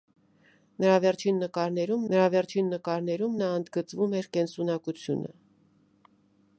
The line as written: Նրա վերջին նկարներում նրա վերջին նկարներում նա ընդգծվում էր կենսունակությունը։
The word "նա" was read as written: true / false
true